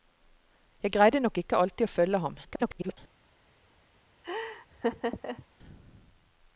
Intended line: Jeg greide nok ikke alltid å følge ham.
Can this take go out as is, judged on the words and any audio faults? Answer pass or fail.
fail